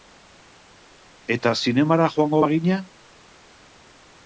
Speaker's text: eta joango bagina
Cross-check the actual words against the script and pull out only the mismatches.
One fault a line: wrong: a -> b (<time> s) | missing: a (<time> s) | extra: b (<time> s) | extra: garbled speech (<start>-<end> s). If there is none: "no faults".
extra: zinemara (1.6 s)